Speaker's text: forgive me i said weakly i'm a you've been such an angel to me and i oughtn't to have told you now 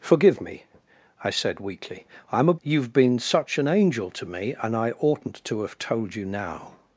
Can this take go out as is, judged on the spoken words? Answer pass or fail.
pass